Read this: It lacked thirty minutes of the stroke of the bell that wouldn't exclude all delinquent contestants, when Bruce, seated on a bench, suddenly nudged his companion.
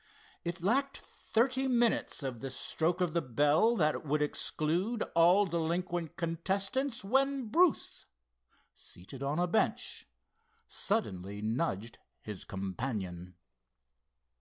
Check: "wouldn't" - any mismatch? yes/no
yes